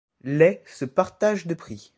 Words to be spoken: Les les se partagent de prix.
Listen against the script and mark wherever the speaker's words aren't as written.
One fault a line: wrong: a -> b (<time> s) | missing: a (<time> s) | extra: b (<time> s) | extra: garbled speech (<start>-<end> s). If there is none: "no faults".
missing: les (0.6 s)